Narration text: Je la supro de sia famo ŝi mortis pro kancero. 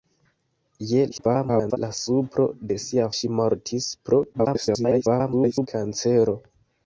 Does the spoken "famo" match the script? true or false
false